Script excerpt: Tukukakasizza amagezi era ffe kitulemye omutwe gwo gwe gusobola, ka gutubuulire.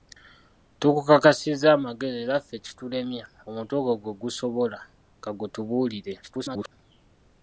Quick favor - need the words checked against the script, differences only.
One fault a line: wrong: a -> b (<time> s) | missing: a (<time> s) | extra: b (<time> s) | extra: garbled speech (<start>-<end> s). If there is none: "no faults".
extra: garbled speech (6.2-6.7 s)